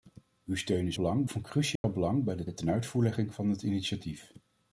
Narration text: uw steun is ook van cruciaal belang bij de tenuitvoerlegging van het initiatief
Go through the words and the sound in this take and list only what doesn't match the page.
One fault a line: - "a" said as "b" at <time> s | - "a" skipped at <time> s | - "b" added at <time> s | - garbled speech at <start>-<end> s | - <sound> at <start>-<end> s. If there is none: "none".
- "ook" said as "belang" at 0.9 s
- dropout at 1.8-1.8 s
- "de" added at 2.4 s